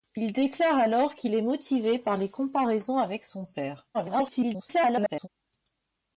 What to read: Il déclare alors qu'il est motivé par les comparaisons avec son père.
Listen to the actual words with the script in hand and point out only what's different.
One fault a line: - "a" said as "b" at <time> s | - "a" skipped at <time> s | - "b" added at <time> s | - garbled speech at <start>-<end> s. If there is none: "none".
- garbled speech at 3.9-5.3 s